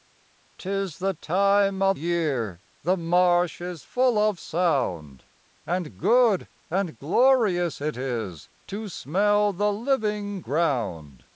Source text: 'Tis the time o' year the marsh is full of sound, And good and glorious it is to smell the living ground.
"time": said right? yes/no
yes